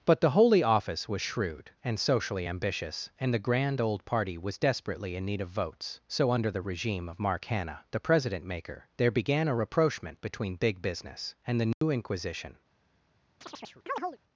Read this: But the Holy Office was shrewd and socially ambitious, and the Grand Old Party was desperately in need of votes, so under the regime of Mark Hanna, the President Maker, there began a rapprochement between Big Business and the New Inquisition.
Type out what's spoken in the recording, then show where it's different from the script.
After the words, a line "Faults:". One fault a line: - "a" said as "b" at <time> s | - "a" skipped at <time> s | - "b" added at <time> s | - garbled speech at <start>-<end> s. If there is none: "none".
But the Holy Office was shrewd and socially ambitious, and the Grand Old Party was desperately in need of votes, so under the regime of Mark Hanna, the President Maker, there began a rapprochement between Big Business and the New Inquisition.
Faults:
none